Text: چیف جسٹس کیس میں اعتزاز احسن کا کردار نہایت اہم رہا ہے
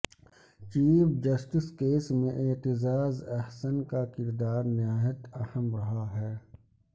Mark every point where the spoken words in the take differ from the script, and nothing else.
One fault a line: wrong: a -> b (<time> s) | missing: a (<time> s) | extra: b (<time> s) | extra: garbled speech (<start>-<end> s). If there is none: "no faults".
no faults